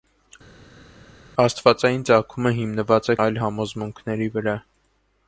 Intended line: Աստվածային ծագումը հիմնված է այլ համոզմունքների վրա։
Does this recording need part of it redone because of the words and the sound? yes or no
no